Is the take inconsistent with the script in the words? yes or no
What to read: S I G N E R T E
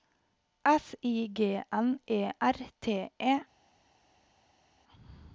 no